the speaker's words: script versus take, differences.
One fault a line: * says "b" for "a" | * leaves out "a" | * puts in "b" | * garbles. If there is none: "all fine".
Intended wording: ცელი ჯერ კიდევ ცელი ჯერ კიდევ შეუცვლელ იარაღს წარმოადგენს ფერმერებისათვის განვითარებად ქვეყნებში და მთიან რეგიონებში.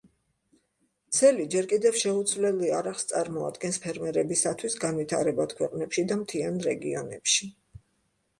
* leaves out "ცელი ჯერ კიდევ"